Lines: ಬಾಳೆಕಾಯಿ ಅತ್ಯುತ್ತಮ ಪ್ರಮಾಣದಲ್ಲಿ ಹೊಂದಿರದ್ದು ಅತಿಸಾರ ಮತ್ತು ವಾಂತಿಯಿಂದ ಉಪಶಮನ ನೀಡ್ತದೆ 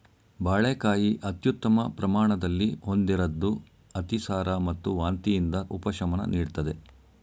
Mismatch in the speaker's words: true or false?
false